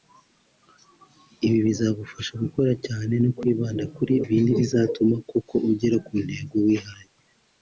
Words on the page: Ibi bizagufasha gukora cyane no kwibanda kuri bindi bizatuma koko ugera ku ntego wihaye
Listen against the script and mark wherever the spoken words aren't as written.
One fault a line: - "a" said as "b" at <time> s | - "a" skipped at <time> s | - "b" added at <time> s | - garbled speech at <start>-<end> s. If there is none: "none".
none